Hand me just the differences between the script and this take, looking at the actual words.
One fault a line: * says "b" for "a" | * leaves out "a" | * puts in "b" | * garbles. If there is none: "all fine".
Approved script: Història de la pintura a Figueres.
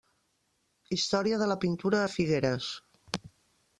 all fine